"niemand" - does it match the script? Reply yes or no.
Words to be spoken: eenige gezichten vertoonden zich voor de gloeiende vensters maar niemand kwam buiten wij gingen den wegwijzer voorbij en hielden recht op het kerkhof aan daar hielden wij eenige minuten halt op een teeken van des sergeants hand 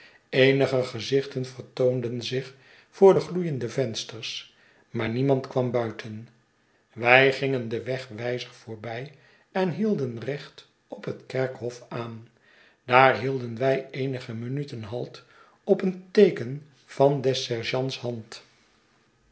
yes